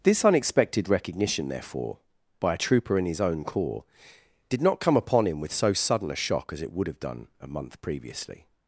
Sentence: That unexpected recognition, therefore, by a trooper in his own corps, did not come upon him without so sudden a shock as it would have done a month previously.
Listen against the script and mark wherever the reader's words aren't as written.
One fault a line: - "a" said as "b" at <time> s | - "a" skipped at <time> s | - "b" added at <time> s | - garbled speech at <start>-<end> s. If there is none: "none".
- "That" said as "This" at 0.0 s
- "without" said as "with" at 5.4 s